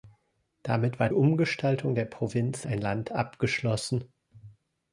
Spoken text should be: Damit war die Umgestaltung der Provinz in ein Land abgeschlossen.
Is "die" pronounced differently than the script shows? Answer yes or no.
yes